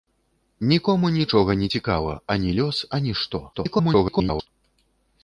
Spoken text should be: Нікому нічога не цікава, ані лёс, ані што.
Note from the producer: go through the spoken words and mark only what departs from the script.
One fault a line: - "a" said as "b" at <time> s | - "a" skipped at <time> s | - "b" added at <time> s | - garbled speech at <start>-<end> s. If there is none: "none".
- garbled speech at 3.5-4.5 s